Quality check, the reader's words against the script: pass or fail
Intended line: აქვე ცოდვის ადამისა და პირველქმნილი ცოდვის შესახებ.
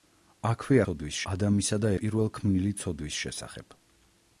pass